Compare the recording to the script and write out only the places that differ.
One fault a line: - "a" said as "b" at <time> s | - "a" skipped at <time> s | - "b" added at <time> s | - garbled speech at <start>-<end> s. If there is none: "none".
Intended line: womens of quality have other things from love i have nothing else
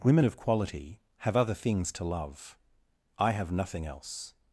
- "womens" said as "women" at 0.0 s
- "from" said as "to" at 1.9 s